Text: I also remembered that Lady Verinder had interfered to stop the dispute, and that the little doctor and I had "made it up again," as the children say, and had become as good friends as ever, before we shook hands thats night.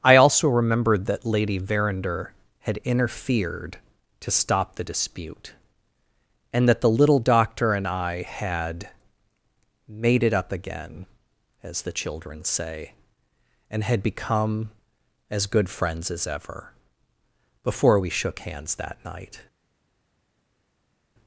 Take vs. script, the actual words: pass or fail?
fail